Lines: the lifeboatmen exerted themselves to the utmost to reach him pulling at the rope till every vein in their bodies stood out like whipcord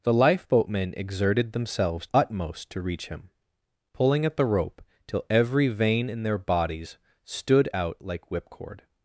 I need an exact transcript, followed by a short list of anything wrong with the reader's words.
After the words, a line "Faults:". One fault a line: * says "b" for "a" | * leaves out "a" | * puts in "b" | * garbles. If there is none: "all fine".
the lifeboatmen exerted themselves utmost to reach him pulling at the rope till every vein in their bodies stood out like whipcord
Faults:
* leaves out "to the"